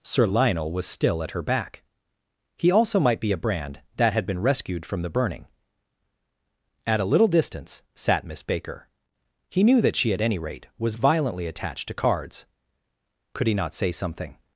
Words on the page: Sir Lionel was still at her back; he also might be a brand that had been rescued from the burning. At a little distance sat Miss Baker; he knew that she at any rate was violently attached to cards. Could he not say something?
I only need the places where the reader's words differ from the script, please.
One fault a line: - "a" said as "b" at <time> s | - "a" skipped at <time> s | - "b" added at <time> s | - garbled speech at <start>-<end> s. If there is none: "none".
none